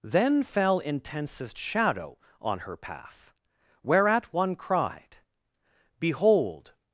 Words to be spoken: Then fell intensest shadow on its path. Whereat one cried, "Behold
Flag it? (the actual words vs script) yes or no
yes